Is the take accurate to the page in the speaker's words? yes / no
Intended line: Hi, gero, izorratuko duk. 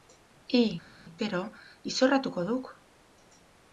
yes